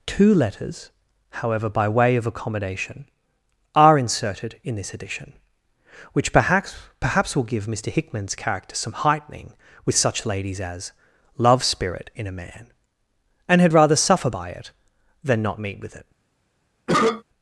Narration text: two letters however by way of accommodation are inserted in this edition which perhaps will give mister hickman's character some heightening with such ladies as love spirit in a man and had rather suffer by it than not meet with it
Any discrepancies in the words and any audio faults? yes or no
yes